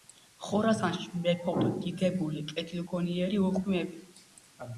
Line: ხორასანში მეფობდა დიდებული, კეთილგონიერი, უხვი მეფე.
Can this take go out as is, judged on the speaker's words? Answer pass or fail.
pass